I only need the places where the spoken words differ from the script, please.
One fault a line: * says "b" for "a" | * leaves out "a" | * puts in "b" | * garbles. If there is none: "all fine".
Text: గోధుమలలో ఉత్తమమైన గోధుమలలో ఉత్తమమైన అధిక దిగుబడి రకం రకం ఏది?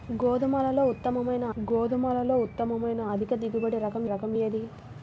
all fine